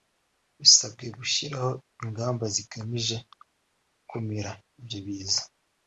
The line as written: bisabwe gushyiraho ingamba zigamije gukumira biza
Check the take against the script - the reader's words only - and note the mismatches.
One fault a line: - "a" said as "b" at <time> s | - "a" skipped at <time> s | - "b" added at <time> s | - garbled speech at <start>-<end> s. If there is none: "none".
- "ibyo" added at 4.8 s